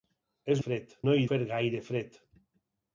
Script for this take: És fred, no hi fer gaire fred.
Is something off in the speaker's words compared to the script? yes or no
no